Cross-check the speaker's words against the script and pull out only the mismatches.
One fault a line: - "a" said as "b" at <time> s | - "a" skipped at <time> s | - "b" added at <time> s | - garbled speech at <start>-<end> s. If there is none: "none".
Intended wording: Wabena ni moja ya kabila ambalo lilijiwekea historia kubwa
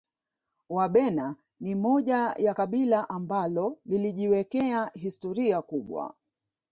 none